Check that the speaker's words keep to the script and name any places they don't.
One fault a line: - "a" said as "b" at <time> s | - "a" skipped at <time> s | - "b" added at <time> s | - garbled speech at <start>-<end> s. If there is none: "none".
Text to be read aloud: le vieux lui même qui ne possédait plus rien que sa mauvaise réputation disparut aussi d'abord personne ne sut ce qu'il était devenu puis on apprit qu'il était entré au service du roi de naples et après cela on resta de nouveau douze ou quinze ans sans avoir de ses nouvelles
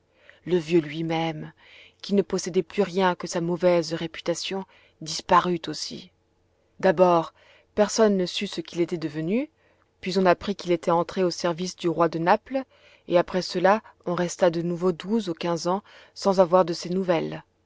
none